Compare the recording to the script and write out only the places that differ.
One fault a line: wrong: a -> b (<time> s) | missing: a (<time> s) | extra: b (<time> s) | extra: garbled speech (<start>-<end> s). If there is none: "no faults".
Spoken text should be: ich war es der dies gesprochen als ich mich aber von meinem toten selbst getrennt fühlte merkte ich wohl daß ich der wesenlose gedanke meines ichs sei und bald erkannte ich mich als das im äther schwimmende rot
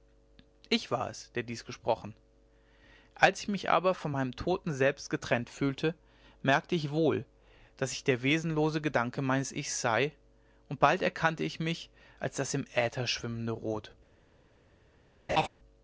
no faults